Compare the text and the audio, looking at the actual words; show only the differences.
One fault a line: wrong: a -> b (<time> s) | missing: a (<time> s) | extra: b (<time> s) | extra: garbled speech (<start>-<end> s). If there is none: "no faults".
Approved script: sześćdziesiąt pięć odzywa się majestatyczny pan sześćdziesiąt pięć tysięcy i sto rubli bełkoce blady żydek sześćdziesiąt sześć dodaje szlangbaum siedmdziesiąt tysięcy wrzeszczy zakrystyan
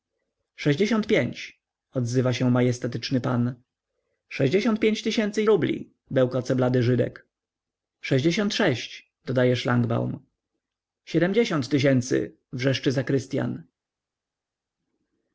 missing: sto (5.5 s)